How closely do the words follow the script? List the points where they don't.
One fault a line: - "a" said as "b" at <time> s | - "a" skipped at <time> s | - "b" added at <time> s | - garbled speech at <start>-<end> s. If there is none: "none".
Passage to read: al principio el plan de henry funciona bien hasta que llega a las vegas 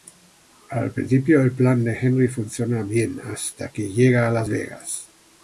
none